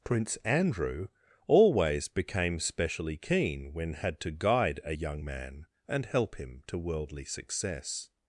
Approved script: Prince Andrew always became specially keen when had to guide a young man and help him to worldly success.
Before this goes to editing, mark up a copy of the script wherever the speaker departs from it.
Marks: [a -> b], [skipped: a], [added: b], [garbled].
Prince Andrew always became specially keen when had to guide a young man and help him to worldly success.